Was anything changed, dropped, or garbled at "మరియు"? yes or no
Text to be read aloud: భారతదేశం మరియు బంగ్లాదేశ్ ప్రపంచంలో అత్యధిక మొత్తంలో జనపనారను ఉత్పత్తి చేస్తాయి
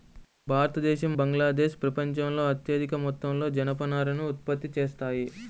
yes